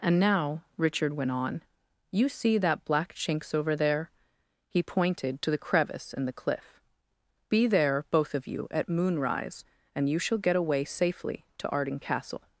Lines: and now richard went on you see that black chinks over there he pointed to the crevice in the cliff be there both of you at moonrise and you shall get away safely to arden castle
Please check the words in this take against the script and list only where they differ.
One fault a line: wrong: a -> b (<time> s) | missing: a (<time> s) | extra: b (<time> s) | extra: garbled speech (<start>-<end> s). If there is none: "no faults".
no faults